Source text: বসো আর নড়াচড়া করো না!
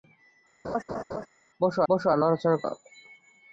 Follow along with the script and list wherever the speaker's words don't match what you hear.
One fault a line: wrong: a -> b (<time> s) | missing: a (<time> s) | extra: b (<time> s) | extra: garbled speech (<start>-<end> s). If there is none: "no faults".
extra: বসো (1.9 s)
missing: করো (2.6 s)